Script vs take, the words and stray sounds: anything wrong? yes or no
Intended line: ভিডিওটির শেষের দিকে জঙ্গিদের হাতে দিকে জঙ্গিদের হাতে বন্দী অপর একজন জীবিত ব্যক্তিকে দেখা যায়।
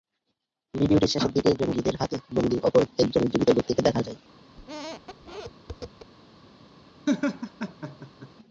yes